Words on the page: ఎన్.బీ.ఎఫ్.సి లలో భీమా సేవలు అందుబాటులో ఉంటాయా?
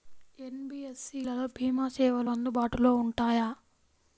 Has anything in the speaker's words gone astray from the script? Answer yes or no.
no